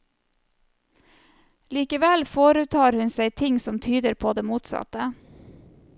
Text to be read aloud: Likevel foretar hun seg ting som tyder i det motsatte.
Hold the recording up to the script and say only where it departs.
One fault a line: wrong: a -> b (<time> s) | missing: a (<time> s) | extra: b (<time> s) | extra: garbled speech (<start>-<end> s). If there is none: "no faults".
wrong: i -> på (4.1 s)